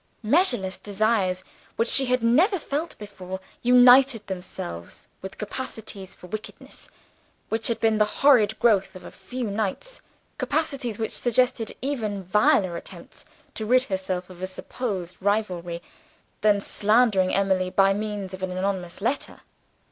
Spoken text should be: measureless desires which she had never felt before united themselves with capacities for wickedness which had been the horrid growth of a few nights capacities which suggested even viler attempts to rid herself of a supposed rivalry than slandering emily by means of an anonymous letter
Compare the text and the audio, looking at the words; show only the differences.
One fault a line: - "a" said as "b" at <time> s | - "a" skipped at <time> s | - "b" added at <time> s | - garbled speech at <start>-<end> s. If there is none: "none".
none